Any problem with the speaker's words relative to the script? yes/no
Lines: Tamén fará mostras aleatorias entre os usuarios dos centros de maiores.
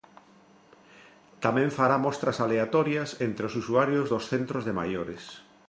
no